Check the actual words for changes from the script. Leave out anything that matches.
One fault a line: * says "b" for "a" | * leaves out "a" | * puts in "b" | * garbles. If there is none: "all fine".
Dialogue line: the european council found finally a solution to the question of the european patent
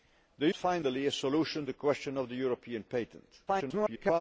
* leaves out "european council found"
* leaves out "to"
* garbles